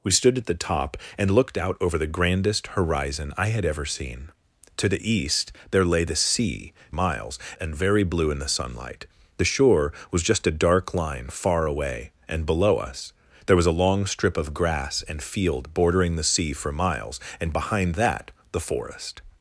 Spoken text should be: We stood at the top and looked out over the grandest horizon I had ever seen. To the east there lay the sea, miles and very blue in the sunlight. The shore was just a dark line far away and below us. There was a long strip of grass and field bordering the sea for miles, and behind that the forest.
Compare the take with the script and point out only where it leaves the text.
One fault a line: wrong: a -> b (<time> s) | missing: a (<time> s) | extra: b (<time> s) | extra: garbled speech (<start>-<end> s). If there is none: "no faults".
no faults